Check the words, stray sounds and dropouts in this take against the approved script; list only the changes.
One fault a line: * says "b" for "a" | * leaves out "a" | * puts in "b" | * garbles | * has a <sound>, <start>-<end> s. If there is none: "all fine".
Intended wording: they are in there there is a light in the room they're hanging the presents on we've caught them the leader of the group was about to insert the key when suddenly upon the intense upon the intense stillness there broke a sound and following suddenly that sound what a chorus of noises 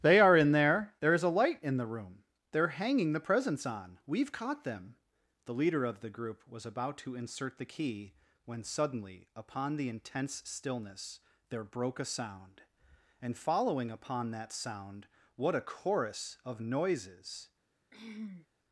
* leaves out "upon the intense"
* says "upon" for "suddenly"
* has a throat clearing, 17.9-18.5 s